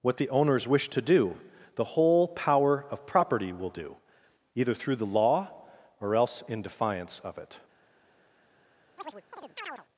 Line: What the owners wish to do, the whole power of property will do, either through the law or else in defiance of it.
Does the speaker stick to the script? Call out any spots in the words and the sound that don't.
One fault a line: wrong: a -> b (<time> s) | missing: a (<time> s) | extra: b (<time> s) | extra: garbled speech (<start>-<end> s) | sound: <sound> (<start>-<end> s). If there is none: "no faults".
sound: chirp (9.0-9.9 s)